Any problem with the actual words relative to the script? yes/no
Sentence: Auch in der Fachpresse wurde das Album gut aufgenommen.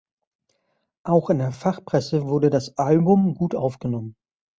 no